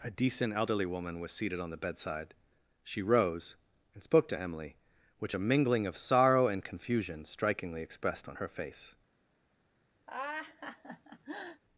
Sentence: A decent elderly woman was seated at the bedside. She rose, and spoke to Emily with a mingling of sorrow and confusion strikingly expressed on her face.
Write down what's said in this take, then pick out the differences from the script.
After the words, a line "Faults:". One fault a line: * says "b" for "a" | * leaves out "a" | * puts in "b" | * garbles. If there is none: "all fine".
A decent elderly woman was seated on the bedside. She rose, and spoke to Emily which a mingling of sorrow and confusion strikingly expressed on her face.
Faults:
* says "on" for "at"
* says "which" for "with"